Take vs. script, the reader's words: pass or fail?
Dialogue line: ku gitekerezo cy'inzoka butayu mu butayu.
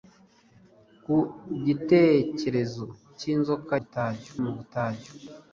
pass